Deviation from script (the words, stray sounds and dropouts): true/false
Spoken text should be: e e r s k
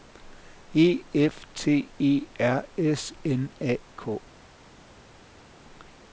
true